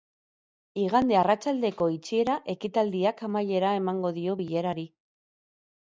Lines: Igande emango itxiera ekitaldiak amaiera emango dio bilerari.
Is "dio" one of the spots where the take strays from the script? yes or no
no